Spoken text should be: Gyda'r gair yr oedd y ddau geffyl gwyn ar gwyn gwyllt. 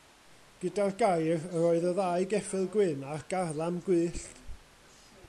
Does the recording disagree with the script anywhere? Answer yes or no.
yes